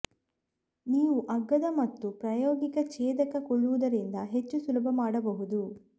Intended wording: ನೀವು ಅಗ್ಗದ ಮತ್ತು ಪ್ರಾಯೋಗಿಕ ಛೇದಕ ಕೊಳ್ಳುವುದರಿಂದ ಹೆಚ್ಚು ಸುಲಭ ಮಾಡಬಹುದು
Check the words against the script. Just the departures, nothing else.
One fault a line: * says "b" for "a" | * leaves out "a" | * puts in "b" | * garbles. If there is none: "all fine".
all fine